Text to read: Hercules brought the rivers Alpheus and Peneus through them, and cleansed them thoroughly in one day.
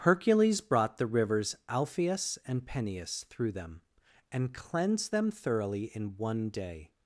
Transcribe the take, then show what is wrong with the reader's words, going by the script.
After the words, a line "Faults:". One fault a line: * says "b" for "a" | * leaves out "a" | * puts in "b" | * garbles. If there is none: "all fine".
Hercules brought the rivers Alpheus and Peneus through them, and cleansed them thoroughly in one day.
Faults:
all fine